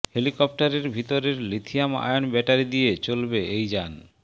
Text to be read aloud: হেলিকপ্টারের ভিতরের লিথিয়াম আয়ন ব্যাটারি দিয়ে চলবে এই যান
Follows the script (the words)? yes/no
yes